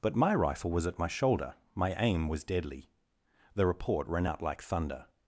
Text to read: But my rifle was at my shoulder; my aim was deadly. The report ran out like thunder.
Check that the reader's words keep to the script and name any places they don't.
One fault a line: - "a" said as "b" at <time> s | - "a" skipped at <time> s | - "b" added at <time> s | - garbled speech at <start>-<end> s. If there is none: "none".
none